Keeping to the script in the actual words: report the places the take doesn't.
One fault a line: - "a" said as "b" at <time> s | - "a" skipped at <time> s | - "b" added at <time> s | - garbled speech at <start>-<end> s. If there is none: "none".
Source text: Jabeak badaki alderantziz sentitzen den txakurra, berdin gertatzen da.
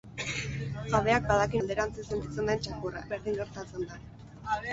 none